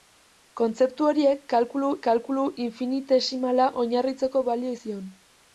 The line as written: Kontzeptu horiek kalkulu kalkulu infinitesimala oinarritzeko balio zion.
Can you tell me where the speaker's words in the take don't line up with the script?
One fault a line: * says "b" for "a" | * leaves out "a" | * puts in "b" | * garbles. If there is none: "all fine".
all fine